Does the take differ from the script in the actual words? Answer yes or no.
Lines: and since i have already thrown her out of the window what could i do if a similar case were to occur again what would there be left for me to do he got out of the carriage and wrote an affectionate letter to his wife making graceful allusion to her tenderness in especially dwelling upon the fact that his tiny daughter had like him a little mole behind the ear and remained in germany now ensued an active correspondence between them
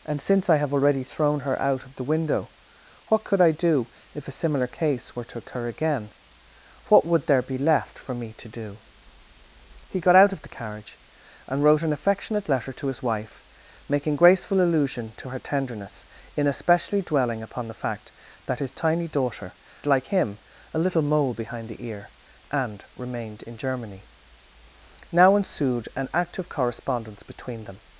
yes